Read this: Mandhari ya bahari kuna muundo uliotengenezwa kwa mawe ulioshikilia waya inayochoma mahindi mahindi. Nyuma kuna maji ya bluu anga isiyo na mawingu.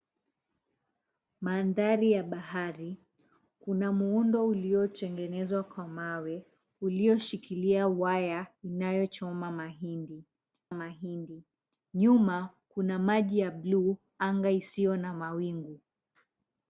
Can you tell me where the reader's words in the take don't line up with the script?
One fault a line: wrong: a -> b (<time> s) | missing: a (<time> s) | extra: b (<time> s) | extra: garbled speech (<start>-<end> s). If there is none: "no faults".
no faults